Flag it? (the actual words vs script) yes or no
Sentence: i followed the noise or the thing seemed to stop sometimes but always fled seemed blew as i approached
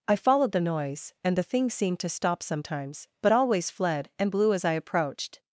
yes